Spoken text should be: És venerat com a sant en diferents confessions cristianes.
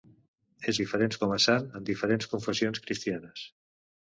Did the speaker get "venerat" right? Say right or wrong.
wrong